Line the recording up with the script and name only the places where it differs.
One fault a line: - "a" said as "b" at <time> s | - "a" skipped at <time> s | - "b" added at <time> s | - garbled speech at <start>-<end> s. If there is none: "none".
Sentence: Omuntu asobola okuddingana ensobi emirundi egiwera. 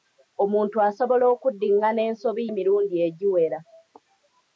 none